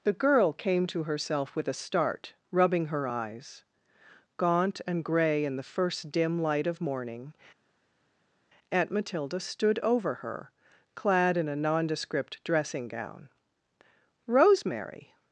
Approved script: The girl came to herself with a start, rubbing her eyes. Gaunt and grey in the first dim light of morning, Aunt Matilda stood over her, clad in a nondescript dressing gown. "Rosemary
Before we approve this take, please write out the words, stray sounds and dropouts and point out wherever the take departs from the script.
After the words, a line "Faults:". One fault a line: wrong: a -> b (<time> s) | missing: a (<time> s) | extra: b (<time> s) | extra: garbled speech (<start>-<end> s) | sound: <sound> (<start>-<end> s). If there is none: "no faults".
The girl came to herself with a start, rubbing her eyes. Gaunt and grey in the first dim light of morning, Aunt Matilda stood over her, clad in a nondescript dressing gown. "Rosemary
Faults:
no faults